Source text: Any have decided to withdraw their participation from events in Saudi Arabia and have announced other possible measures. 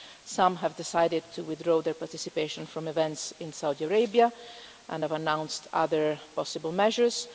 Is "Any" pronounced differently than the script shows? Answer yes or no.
yes